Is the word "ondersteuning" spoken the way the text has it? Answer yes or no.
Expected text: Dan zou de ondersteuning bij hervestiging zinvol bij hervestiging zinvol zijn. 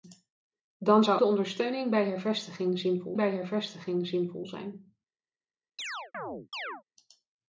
yes